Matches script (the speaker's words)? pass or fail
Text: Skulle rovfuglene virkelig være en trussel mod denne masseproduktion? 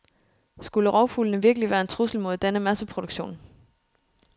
pass